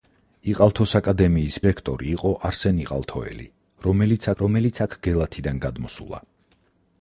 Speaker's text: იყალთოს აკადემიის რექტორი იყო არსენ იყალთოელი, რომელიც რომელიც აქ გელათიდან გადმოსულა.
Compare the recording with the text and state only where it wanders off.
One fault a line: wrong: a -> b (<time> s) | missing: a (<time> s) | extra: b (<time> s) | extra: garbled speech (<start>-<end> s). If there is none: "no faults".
no faults